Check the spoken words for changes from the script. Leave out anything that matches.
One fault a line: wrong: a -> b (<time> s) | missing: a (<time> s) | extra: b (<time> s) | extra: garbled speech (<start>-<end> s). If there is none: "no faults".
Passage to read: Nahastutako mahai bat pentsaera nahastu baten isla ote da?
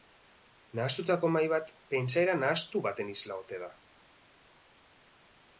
no faults